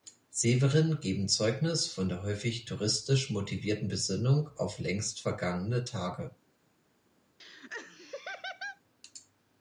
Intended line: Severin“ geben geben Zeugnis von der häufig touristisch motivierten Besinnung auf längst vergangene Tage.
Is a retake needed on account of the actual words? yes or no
yes